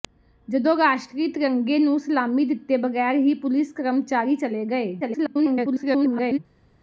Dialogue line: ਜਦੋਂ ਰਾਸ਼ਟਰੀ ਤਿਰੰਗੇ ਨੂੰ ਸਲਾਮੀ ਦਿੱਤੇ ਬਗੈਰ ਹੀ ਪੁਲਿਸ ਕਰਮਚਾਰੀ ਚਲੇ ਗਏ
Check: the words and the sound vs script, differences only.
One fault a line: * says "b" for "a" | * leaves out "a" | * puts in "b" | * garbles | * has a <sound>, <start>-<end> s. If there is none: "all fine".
* garbles